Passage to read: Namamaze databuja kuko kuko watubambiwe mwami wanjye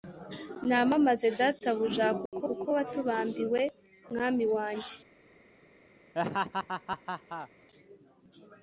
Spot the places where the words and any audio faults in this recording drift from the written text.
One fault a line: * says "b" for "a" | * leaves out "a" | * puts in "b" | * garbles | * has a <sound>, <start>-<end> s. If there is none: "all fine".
* has a dropout, 2.3-2.3 s
* has a laugh, 6.1-7.5 s